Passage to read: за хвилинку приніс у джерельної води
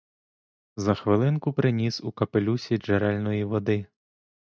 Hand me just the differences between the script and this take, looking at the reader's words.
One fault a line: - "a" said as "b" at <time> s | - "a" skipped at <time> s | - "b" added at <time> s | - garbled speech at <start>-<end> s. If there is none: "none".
- "капелюсі" added at 2.1 s